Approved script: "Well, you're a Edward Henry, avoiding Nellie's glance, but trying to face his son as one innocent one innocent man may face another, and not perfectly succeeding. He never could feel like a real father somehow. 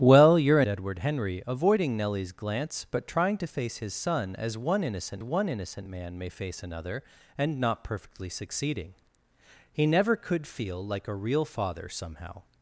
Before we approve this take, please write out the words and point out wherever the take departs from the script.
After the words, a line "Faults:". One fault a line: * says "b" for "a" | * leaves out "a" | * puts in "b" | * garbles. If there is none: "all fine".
"Well, you're a Edward Henry, avoiding Nellie's glance, but trying to face his son as one innocent one innocent man may face another, and not perfectly succeeding. He never could feel like a real father somehow.
Faults:
all fine